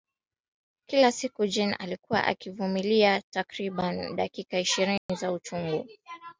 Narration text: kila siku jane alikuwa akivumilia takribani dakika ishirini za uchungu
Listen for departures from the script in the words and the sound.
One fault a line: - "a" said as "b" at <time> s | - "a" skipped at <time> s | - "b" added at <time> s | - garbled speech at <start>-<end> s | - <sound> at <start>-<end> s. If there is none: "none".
- dropout at 5.0-5.1 s